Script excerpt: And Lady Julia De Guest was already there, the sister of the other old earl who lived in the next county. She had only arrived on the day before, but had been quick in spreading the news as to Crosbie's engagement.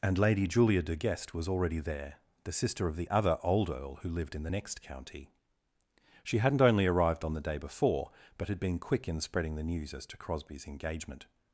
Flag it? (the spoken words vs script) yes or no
yes